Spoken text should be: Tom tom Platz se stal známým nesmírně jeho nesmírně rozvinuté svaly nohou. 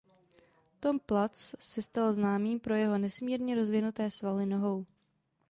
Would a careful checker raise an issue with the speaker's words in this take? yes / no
yes